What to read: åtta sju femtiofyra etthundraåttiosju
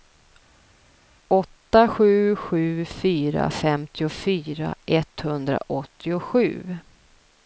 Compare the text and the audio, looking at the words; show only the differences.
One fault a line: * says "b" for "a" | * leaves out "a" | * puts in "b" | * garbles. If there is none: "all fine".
* puts in "sju fyra"